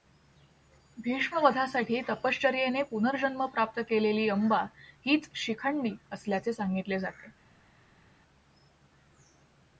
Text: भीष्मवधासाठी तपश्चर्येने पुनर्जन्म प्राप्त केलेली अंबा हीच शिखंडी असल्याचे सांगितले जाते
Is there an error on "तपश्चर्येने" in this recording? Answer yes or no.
no